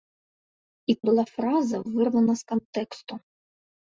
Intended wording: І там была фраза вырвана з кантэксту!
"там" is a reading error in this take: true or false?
true